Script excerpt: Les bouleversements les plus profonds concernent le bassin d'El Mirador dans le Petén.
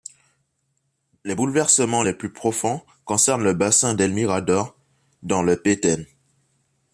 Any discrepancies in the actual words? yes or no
no